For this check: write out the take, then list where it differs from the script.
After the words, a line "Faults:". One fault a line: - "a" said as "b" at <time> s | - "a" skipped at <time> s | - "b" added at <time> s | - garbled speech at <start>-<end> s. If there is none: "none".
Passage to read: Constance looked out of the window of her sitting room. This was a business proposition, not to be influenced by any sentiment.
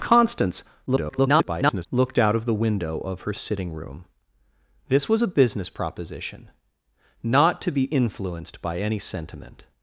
Constance [garbled] looked out of the window of her sitting room. This was a business proposition, not to be influenced by any sentiment.
Faults:
- garbled speech at 0.9-1.9 s